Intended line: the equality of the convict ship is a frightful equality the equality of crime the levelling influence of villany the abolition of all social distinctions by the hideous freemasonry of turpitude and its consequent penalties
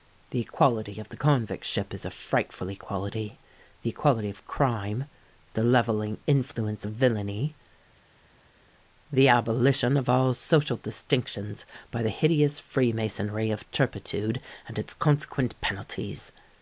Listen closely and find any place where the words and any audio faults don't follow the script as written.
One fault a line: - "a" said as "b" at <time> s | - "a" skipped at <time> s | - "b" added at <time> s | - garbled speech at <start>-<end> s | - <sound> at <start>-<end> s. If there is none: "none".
none